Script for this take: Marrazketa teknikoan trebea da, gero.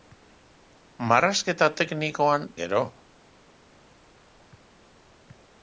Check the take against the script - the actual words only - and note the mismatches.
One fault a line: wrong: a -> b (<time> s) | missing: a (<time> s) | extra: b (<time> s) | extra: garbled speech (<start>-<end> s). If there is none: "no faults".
missing: trebea da (2.5 s)